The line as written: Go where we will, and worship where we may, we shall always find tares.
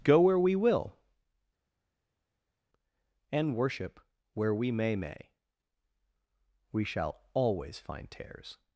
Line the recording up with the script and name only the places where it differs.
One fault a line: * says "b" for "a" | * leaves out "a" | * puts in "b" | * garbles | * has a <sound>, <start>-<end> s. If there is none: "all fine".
* puts in "may"